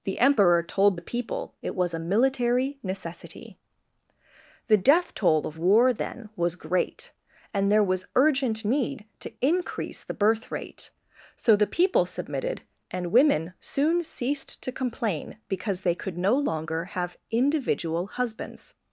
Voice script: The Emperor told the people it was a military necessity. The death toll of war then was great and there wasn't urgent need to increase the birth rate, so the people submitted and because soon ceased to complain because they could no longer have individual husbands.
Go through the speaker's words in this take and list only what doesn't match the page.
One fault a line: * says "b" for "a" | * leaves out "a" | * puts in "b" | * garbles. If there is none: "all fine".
* says "was" for "wasn't"
* says "women" for "because"